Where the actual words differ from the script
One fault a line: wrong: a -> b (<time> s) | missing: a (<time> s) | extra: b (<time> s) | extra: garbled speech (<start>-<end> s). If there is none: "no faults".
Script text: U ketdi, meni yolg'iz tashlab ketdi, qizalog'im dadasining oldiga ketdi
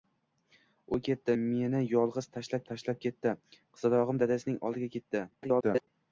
extra: tashlab (2.7 s)
extra: garbled speech (5.3-5.9 s)